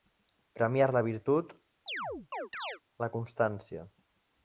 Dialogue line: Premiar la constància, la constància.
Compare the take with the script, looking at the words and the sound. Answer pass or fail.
fail